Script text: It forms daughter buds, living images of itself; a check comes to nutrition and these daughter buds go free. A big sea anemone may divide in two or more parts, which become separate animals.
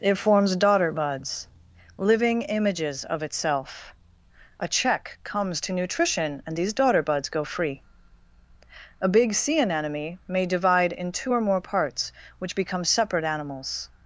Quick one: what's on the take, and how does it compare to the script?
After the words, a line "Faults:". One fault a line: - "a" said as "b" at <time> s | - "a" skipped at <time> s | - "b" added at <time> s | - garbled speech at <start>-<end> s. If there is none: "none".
It forms daughter buds, living images of itself; a check comes to nutrition and these daughter buds go free. A big sea anemone may divide in two or more parts, which become separate animals.
Faults:
none